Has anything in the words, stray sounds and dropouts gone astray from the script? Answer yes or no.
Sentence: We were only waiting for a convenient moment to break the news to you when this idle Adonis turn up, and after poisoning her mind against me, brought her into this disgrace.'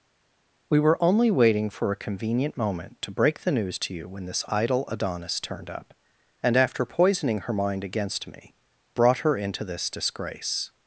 yes